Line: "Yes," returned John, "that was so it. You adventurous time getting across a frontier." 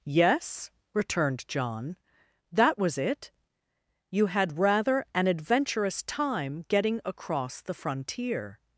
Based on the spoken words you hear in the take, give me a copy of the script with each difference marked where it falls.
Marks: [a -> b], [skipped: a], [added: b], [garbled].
"Yes," returned John, "that was [skipped: so] it. You [added: had rather an] adventurous time getting across [a -> the] frontier."